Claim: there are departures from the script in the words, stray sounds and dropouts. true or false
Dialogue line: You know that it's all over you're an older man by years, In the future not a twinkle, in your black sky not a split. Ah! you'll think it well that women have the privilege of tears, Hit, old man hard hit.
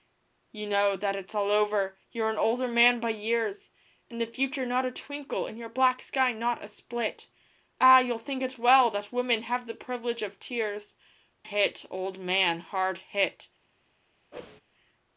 true